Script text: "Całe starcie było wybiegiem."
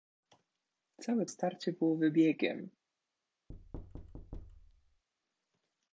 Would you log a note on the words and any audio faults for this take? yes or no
yes